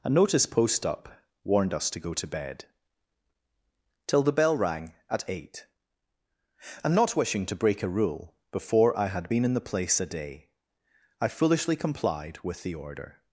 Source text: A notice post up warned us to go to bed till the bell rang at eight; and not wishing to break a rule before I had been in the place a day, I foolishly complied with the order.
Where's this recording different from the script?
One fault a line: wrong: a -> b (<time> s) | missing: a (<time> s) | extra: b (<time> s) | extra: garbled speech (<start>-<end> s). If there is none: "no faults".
no faults